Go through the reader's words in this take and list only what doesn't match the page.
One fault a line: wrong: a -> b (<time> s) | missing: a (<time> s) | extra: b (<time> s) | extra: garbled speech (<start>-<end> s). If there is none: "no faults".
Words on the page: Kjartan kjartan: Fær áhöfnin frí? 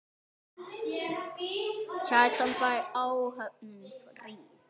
missing: kjartan (2.5 s)